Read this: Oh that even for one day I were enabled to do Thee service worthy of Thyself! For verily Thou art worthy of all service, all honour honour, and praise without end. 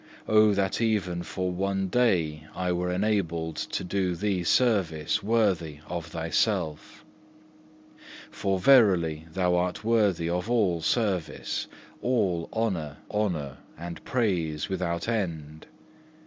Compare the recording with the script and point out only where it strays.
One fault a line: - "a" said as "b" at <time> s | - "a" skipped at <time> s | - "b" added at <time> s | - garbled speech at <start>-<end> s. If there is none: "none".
none